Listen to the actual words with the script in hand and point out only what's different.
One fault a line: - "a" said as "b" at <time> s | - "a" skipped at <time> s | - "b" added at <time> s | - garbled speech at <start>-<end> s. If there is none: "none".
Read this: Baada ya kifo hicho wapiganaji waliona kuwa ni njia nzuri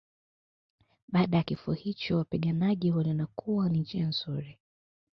none